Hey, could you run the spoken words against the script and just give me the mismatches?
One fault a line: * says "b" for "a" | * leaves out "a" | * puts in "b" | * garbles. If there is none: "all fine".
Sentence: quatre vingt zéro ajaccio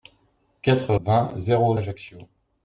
all fine